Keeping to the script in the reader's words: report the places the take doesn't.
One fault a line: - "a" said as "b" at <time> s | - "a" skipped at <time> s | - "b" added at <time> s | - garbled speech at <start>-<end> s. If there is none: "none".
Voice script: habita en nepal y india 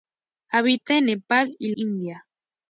none